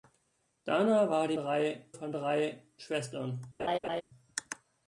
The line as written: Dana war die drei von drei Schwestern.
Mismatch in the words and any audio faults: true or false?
true